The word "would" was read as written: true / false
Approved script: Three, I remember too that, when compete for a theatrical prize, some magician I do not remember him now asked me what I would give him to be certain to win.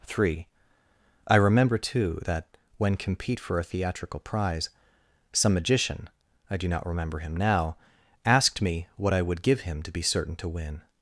true